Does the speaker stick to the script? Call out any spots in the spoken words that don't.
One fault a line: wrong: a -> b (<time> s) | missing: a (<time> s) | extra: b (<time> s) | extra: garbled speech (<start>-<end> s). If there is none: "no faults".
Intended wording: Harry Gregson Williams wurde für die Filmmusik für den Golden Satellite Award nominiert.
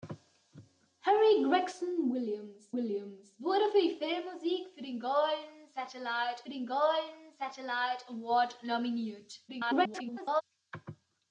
extra: Williams (2.7 s)
extra: den Golden Satellite (6.5 s)
extra: garbled speech (9.5-10.4 s)